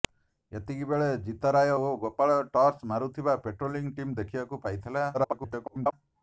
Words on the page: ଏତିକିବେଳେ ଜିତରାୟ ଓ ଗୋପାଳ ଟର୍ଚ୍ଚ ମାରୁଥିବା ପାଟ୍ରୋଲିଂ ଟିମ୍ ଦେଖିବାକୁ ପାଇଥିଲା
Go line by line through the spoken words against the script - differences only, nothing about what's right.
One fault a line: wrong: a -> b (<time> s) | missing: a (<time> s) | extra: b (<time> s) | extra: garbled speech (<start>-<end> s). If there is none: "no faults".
extra: garbled speech (5.1-5.9 s)